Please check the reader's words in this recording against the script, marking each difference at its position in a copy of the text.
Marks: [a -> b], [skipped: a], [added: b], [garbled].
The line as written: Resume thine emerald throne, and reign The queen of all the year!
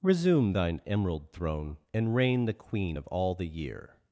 Resume thine emerald throne, and reign The queen of all the year!